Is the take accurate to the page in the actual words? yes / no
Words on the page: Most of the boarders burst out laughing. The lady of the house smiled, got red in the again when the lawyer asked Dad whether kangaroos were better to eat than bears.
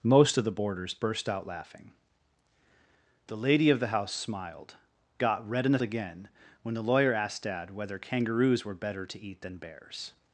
yes